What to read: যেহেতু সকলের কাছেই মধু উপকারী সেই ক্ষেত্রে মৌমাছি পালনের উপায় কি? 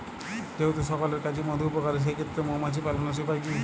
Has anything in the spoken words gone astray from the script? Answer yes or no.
no